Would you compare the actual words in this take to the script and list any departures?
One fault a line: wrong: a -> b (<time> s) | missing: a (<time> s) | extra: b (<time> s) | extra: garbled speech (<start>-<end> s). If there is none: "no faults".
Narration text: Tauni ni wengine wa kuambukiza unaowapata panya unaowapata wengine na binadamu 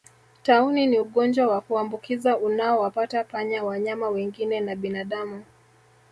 wrong: wengine -> ugonjwa (1.0 s)
wrong: unaowapata -> wanyama (3.6 s)